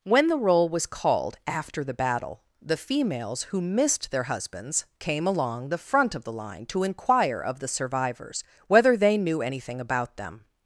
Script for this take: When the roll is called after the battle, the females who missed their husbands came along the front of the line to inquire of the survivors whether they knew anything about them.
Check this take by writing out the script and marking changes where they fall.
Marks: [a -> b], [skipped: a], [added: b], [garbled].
When the roll [is -> was] called after the battle, the females who missed their husbands came along the front of the line to inquire of the survivors whether they knew anything about them.